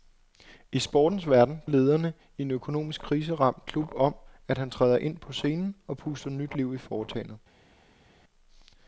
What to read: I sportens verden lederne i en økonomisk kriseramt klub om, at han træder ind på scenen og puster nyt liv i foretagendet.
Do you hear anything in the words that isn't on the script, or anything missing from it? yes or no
no